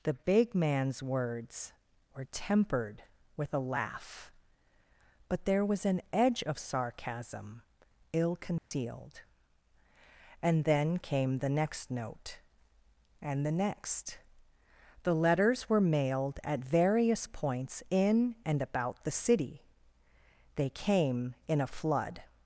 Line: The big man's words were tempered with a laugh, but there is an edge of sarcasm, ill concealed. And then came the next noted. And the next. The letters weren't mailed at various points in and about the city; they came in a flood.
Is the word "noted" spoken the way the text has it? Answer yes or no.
no